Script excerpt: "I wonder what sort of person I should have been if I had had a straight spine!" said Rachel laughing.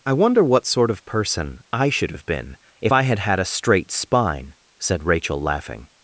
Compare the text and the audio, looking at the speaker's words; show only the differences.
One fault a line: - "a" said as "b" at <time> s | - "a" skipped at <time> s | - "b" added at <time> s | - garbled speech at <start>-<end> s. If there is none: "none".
none